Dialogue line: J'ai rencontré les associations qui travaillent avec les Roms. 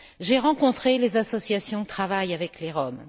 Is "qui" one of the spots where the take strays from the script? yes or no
yes